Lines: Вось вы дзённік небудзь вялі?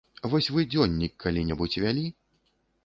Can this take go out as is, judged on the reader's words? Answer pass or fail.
fail